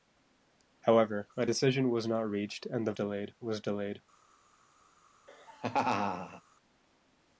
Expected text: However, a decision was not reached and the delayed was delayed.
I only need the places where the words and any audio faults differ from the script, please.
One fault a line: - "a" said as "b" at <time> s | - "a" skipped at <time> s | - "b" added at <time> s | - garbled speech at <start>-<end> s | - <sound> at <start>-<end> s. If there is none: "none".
- laugh at 5.3-6.4 s